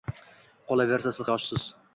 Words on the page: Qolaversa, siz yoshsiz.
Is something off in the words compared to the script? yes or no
no